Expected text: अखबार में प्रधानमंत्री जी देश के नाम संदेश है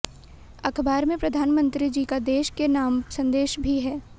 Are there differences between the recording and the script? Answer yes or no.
yes